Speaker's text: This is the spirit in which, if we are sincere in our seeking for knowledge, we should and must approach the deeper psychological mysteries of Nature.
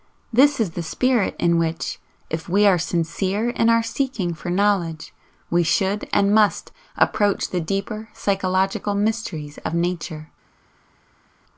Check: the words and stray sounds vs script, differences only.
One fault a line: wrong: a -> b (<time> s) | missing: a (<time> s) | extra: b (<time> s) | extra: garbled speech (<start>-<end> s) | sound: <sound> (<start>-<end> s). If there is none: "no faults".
no faults